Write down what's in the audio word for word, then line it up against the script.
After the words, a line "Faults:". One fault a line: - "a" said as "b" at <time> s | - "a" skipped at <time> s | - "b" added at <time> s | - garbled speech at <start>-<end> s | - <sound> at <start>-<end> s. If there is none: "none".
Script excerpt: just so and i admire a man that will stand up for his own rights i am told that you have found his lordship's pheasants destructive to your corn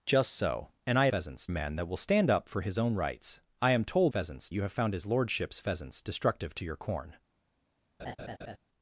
just so and i pheasants a man that will stand up for his own rights i am told pheasants you have found his lordship's pheasants destructive to your corn
Faults:
- "admire" said as "pheasants" at 1.1 s
- "that" said as "pheasants" at 4.1 s
- laugh at 8.0-8.6 s